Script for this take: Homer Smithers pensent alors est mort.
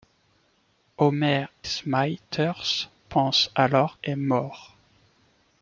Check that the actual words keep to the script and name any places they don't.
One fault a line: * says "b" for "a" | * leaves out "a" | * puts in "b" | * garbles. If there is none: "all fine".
all fine